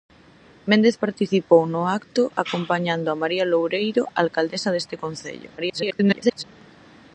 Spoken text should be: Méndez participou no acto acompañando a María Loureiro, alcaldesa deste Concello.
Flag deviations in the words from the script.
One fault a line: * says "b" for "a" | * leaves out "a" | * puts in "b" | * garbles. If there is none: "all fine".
* garbles